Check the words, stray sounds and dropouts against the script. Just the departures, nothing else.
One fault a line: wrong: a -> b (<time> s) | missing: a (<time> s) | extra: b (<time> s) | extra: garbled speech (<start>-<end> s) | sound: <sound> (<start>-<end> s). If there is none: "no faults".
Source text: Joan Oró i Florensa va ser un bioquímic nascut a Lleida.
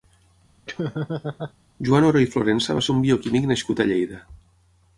sound: laugh (0.7-1.5 s)